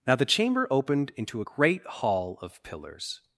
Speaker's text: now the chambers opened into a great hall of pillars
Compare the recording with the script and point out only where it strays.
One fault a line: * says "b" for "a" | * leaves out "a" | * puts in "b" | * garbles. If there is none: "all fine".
* says "chamber" for "chambers"